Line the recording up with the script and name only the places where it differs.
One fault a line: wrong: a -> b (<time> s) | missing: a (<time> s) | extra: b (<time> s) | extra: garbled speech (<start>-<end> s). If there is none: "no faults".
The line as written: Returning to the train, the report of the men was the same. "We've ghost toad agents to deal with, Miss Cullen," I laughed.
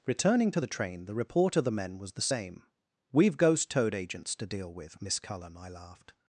no faults